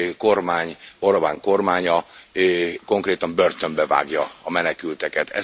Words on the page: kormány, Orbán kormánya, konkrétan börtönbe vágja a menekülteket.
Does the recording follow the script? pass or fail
pass